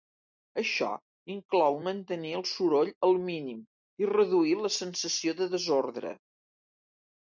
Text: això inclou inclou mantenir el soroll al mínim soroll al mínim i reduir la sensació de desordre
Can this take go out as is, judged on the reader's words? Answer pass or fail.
fail